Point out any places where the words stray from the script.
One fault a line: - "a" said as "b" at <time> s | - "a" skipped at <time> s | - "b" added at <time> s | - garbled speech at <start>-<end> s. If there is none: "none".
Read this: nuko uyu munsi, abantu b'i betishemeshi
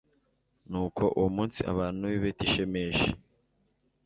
- "uyu" said as "uwo" at 1.2 s